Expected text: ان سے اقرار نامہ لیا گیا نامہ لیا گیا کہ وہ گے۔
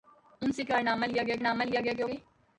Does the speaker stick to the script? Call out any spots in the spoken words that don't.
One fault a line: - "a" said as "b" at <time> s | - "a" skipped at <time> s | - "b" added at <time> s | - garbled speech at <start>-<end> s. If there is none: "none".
none